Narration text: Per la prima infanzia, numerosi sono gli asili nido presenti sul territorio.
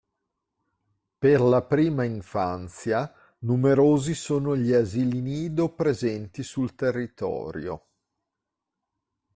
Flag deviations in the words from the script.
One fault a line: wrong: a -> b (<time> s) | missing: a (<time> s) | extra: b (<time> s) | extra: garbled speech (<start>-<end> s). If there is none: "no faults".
no faults